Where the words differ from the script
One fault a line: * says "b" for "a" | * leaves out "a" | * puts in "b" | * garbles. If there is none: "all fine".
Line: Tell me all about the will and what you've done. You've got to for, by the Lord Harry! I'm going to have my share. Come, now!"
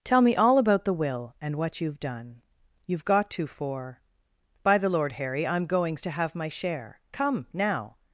* says "goings" for "going"